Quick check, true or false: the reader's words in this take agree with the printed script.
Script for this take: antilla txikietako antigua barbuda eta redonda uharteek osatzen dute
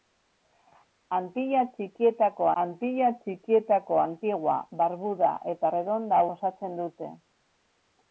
false